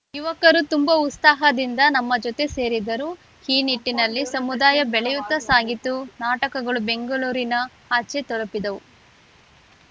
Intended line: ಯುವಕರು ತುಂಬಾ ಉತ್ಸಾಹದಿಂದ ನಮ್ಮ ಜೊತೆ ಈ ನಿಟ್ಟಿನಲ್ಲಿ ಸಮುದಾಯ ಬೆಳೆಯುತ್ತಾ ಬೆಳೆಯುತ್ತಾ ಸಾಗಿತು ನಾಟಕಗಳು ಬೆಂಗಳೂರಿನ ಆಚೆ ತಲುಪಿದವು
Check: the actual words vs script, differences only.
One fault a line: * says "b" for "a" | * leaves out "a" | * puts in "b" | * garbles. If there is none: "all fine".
* puts in "ಸೇರಿದರು"
* leaves out "ಬೆಳೆಯುತ್ತಾ"